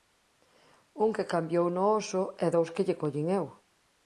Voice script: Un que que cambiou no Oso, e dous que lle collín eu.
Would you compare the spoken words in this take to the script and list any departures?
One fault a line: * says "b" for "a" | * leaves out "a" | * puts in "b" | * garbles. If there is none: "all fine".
* leaves out "que"